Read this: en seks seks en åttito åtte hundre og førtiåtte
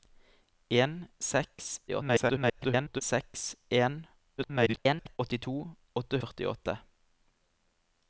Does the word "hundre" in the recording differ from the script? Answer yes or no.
yes